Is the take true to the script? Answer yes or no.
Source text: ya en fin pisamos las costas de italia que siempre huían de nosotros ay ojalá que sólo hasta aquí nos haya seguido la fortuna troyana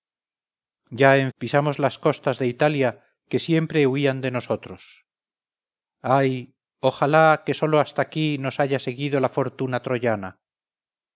no